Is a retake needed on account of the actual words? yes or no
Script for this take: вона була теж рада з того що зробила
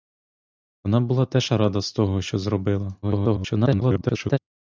yes